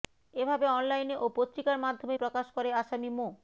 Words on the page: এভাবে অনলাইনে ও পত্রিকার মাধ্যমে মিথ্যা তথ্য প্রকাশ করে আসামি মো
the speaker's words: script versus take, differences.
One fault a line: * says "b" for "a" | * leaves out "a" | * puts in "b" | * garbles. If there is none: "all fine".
* leaves out "মিথ্যা তথ্য"